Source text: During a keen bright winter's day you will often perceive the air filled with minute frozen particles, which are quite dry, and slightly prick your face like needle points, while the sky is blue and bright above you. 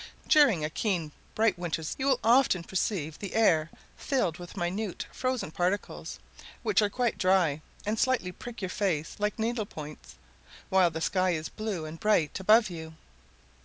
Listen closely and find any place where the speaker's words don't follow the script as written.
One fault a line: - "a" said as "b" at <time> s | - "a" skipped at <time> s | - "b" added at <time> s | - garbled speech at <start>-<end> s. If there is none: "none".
- "day" skipped at 1.9 s